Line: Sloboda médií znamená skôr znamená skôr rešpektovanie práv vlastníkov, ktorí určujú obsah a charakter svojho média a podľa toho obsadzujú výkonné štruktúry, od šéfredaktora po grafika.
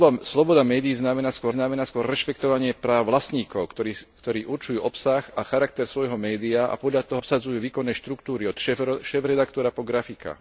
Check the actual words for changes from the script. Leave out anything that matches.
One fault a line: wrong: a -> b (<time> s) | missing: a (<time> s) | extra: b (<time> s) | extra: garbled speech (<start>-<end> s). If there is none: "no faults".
no faults